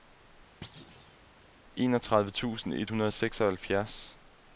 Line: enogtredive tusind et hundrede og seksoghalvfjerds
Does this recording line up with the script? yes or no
yes